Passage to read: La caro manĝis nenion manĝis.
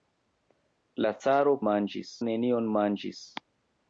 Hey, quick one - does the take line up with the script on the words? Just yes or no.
yes